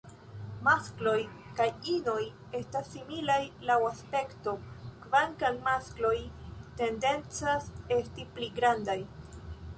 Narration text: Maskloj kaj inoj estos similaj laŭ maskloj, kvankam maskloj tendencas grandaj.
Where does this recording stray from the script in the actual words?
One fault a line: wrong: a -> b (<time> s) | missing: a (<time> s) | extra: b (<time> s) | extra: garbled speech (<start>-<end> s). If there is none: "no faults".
wrong: estos -> estas (2.6 s)
wrong: maskloj -> aspekto (3.9 s)
extra: esti pli (8.0 s)